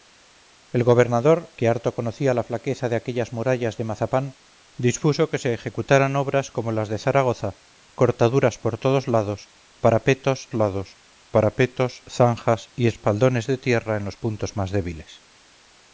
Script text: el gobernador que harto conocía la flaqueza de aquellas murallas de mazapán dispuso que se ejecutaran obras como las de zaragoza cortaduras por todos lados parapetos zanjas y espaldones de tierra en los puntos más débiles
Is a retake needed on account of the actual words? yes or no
yes